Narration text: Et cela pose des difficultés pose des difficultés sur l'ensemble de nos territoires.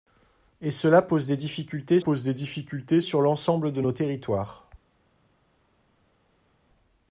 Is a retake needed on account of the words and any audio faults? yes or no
no